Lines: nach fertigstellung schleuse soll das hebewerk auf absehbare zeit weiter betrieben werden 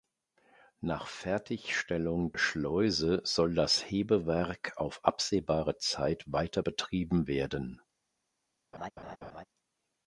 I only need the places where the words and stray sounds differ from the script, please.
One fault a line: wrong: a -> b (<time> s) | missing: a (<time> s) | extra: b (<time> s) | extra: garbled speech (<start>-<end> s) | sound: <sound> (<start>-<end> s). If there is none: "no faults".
sound: laugh (8.7-9.4 s)